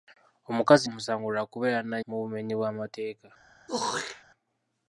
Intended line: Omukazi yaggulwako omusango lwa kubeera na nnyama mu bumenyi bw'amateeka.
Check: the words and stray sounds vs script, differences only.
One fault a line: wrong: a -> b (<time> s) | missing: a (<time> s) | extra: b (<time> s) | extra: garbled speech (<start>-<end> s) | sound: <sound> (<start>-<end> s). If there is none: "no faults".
missing: yaggulwako (0.8 s)
missing: nnyama (2.0 s)
sound: throat clearing (3.7-4.2 s)